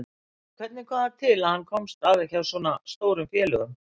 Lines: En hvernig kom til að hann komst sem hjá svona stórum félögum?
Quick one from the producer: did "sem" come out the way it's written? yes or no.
no